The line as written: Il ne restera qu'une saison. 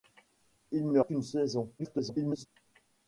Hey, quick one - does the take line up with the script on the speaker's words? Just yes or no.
no